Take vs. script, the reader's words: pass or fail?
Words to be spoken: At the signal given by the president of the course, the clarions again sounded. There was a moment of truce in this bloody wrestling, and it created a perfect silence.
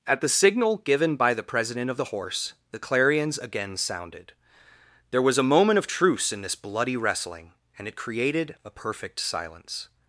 fail